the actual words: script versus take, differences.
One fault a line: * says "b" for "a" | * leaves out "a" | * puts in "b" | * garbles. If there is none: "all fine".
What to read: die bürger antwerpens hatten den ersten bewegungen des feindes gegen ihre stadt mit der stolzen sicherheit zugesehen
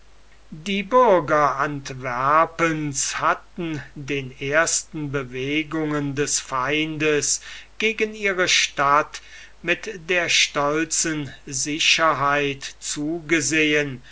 all fine